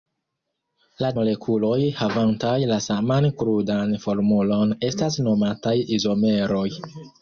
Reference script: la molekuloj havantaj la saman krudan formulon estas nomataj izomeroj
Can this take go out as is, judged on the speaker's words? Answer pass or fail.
pass